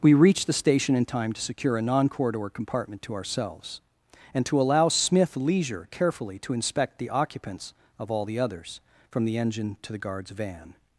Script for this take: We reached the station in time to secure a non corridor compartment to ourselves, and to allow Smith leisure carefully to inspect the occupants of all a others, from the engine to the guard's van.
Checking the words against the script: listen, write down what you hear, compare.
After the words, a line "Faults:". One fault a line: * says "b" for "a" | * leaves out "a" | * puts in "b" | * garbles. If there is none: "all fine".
We reached the station in time to secure a non corridor compartment to ourselves, and to allow Smith leisure carefully to inspect the occupants of all the others, from the engine to the guard's van.
Faults:
* says "the" for "a"